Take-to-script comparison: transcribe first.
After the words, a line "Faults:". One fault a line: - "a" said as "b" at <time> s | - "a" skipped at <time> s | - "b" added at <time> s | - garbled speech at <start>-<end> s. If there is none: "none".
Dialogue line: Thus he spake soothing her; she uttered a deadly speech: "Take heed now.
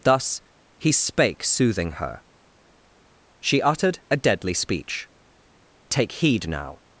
Thus he spake soothing her; she uttered a deadly speech: "Take heed now.
Faults:
none